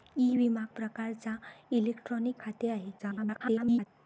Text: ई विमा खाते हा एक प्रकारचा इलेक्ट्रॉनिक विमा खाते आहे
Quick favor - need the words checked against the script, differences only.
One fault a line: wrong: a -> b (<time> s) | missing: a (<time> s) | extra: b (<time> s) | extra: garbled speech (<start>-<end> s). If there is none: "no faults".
missing: खाते हा एक (0.6 s)
missing: विमा (2.4 s)
extra: garbled speech (3.0-3.9 s)